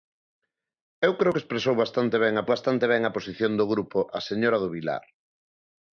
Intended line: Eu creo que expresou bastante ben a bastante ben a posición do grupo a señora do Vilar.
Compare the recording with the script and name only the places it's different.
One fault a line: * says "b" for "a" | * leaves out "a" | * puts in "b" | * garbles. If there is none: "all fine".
all fine